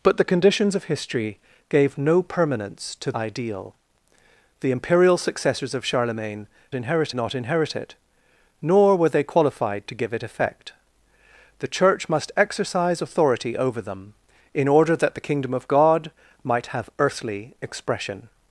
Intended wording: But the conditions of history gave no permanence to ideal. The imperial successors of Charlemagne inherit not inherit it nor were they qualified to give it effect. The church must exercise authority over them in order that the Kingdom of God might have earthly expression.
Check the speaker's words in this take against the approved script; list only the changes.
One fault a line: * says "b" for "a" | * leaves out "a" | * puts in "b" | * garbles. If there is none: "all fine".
all fine